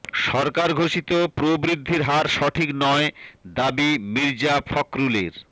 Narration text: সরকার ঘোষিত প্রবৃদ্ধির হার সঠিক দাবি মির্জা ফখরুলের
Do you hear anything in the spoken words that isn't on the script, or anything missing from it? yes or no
yes